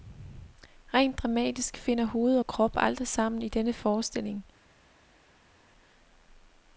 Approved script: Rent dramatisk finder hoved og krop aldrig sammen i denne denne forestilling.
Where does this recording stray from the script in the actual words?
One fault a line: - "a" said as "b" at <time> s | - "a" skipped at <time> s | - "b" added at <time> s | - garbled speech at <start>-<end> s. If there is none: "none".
- "denne" skipped at 3.7 s